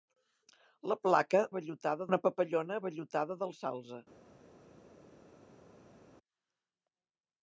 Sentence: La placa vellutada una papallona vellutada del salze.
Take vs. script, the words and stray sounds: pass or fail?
pass